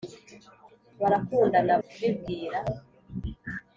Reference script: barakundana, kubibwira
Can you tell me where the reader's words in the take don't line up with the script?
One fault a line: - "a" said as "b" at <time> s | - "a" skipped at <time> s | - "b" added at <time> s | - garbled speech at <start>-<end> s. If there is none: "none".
none